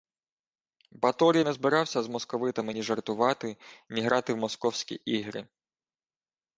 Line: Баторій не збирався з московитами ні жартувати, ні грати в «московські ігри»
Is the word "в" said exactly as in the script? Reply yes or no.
yes